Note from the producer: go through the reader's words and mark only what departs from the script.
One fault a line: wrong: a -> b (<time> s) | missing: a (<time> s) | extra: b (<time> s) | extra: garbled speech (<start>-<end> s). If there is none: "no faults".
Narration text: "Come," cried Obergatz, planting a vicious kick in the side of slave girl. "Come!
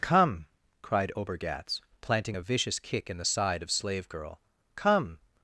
no faults